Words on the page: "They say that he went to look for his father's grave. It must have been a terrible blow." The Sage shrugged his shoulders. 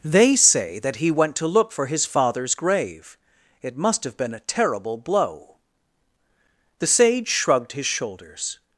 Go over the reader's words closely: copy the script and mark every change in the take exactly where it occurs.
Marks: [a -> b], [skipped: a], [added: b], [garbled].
"They say that he went to look for his father's grave. It must have been a terrible blow." The Sage shrugged his shoulders.